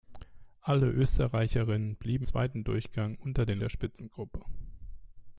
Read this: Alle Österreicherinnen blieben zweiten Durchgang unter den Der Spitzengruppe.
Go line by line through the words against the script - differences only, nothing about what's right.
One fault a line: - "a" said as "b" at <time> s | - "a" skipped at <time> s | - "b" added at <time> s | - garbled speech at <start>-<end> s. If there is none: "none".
none